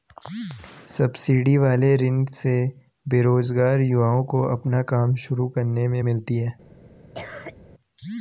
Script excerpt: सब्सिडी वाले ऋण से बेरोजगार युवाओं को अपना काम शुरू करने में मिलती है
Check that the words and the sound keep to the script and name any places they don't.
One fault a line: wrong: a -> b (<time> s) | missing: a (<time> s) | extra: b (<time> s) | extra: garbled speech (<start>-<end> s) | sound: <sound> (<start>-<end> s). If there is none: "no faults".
sound: cough (7.1-7.5 s)